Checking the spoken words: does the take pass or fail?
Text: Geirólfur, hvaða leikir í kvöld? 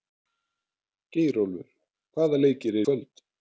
pass